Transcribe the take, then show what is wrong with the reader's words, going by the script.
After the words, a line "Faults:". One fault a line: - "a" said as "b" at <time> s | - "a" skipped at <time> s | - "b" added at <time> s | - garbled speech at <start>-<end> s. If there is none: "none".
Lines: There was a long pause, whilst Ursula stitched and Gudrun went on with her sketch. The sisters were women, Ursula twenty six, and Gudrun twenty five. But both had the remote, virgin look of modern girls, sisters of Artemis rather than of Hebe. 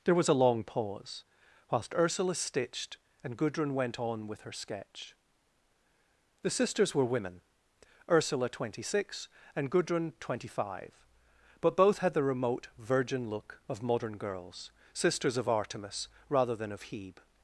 There was a long pause, whilst Ursula stitched and Gudrun went on with her sketch. The sisters were women, Ursula twenty six, and Gudrun twenty five. But both had the remote, virgin look of modern girls, sisters of Artemis rather than of Hebe.
Faults:
none